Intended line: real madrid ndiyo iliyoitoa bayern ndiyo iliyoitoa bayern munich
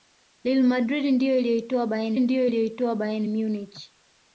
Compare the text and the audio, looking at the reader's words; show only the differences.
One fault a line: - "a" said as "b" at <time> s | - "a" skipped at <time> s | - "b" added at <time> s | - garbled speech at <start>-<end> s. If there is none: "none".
none